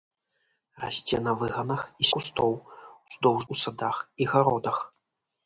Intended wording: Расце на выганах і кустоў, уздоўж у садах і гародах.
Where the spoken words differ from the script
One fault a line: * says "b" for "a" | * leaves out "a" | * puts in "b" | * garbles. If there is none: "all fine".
all fine